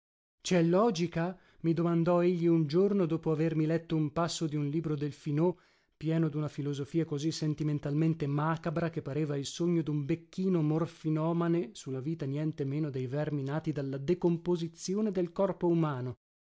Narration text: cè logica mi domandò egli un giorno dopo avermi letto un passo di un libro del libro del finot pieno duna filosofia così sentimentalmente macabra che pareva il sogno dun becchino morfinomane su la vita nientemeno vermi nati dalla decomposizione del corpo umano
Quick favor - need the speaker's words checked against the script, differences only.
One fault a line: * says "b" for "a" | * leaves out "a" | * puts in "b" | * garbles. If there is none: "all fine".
* leaves out "libro del"
* puts in "dei"